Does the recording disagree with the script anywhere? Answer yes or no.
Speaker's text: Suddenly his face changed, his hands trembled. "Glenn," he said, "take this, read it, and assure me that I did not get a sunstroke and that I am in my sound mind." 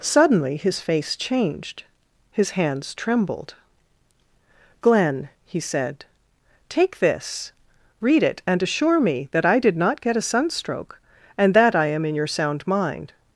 yes